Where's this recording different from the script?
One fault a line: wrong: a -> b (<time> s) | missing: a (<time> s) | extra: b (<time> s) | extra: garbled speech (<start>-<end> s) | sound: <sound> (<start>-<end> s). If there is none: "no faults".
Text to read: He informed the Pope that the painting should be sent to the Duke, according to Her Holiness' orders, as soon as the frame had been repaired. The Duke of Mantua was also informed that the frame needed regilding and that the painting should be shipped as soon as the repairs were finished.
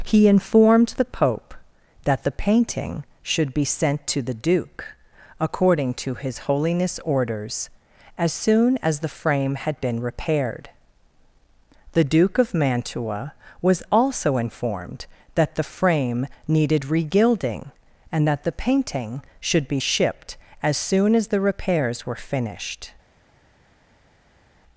wrong: Her -> His (6.2 s)